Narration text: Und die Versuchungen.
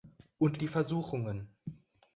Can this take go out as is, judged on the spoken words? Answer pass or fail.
pass